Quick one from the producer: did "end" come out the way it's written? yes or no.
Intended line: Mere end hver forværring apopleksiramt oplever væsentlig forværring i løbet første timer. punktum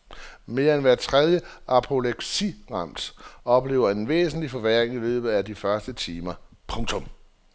yes